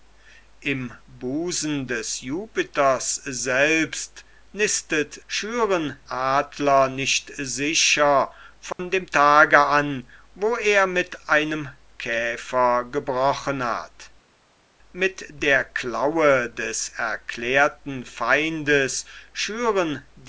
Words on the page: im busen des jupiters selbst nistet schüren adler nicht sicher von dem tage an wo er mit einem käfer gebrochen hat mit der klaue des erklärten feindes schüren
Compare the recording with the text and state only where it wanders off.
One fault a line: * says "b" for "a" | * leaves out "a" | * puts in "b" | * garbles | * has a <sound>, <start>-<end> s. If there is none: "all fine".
* has a dropout, 8.7-8.8 s